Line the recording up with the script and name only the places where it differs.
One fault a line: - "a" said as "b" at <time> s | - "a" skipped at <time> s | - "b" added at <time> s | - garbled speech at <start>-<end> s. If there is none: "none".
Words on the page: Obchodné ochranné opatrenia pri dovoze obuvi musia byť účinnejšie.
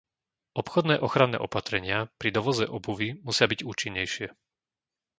none